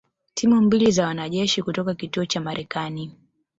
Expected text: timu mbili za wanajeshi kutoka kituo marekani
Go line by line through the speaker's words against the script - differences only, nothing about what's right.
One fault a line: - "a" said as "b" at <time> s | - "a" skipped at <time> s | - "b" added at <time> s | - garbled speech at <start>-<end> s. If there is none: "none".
- "cha" added at 2.2 s